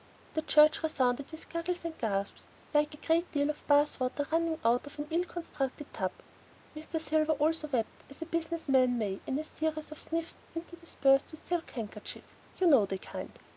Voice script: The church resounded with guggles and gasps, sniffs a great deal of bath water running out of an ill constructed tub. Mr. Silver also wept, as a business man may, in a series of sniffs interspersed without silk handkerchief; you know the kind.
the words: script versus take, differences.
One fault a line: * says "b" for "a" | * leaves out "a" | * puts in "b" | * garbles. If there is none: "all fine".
* says "like" for "sniffs"
* says "with" for "without"